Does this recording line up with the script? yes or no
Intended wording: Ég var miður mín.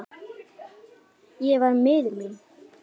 yes